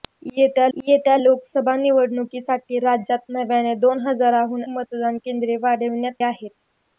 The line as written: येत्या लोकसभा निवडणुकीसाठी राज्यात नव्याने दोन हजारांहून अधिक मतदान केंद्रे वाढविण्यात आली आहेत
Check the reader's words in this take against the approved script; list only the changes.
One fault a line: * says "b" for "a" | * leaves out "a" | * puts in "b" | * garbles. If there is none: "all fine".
* puts in "येत्या"
* leaves out "अधिक"
* leaves out "आली"